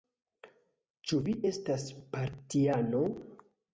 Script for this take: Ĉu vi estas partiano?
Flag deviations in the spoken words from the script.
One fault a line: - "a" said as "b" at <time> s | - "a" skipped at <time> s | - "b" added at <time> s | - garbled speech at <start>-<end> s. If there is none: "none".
none